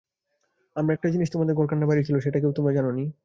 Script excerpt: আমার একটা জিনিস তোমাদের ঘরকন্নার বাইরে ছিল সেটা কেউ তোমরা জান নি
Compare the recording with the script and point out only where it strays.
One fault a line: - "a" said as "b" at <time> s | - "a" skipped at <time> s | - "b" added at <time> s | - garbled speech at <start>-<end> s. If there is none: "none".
none